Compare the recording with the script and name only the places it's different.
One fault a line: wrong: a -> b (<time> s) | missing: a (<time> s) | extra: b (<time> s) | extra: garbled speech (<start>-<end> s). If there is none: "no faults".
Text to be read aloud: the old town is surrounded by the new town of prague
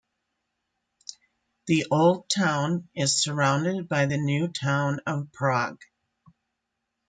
no faults